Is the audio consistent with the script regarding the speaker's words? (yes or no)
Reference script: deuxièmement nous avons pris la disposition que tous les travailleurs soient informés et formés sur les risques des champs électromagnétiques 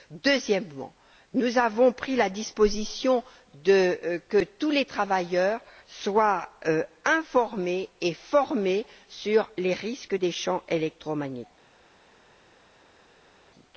yes